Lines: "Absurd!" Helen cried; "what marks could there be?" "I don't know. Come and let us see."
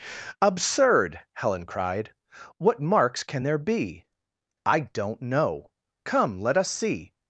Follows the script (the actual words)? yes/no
no